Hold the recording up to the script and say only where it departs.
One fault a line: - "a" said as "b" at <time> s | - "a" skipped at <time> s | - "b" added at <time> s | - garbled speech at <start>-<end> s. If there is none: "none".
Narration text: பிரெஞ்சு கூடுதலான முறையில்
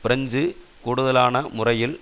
none